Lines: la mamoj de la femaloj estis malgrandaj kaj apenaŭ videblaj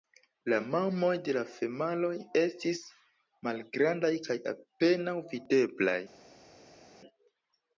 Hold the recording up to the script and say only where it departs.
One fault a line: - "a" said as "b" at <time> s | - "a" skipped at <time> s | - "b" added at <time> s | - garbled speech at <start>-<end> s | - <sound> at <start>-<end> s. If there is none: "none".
none